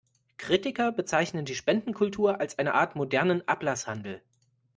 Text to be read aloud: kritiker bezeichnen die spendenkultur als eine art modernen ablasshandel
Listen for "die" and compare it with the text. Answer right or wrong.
right